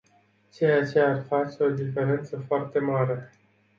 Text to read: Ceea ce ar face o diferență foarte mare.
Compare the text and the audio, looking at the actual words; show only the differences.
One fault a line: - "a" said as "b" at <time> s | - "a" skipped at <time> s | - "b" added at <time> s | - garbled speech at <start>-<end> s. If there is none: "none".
none